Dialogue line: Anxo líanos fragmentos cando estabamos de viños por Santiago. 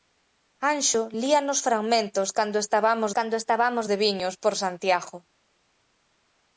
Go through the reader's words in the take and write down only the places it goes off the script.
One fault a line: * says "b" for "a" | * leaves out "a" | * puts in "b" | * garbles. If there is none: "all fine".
* puts in "cando estabamos"